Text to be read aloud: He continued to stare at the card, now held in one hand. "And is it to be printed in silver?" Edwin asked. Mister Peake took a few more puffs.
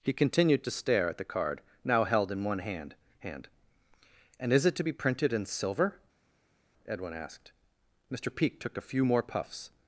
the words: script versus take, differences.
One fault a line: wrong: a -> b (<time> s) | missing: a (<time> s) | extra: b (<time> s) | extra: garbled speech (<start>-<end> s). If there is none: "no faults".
extra: hand (3.2 s)